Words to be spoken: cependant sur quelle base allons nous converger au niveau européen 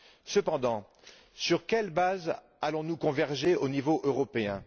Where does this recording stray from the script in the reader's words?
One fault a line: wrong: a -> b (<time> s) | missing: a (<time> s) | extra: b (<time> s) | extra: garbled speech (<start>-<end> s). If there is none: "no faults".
no faults